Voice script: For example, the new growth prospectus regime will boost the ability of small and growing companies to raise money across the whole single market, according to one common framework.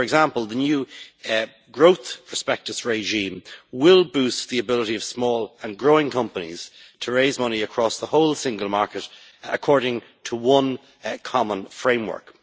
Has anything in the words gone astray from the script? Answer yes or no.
no